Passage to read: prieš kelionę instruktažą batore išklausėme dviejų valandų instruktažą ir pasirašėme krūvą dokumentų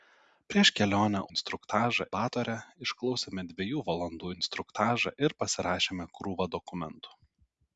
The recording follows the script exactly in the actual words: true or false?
true